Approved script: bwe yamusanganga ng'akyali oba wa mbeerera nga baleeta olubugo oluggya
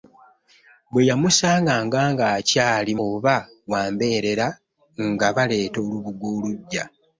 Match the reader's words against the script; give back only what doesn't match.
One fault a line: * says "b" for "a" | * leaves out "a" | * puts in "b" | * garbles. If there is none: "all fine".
all fine